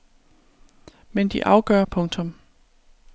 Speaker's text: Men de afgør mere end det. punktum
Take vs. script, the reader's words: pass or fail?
fail